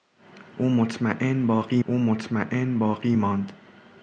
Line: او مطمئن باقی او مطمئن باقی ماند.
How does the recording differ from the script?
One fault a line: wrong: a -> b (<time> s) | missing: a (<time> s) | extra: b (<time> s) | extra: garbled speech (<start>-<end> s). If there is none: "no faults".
no faults